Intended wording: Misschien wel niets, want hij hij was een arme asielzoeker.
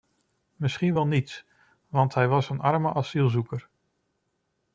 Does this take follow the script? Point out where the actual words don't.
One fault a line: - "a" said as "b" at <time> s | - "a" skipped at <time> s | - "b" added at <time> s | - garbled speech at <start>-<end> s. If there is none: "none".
- "hij" skipped at 2.3 s